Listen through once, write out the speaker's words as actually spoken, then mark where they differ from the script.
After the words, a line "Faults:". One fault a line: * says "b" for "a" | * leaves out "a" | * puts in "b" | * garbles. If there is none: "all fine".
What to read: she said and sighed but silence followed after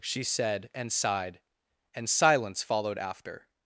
she said and sighed and silence followed after
Faults:
* says "and" for "but"